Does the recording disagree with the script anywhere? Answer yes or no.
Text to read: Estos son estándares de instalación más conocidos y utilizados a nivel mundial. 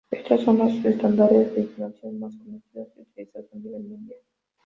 yes